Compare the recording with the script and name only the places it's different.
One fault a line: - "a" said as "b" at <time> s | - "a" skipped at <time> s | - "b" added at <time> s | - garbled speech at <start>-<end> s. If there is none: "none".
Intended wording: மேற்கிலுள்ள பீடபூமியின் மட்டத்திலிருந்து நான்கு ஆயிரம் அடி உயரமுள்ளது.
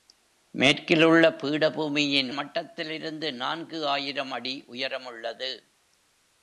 none